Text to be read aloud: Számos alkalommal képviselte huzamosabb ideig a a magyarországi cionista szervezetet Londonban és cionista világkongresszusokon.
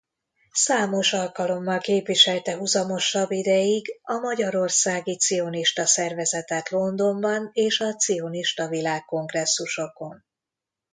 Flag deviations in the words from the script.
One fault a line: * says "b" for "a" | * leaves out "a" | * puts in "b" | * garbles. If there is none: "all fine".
* leaves out "a"
* puts in "a"